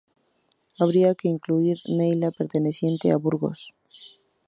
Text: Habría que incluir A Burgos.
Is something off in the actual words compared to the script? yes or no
yes